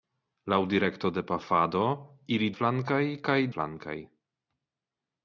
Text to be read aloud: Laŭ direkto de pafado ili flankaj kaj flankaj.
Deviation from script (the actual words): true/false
false